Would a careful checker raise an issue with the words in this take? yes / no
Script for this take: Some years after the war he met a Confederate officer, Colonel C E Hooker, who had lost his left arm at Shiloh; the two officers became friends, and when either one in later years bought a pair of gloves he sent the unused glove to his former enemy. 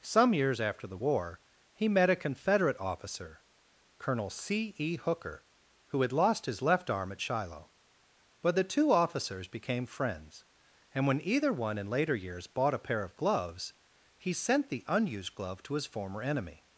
yes